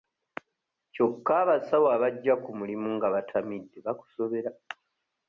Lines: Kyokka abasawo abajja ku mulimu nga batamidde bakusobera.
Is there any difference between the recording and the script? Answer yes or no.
no